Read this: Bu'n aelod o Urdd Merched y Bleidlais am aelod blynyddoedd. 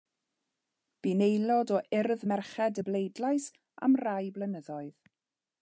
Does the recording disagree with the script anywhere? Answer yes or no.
yes